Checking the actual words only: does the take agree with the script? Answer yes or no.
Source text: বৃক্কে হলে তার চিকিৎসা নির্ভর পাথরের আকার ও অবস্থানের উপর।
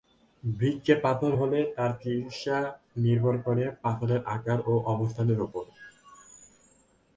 no